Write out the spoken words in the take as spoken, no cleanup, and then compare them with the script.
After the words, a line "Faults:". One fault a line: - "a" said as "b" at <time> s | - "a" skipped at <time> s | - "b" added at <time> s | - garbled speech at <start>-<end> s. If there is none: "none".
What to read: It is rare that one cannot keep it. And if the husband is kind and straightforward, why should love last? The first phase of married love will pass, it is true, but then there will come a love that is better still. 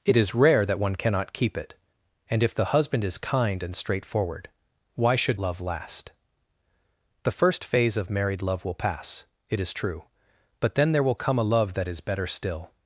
It is rare that one cannot keep it. And if the husband is kind and straightforward, why should love last? The first phase of married love will pass, it is true, but then there will come a love that is better still.
Faults:
none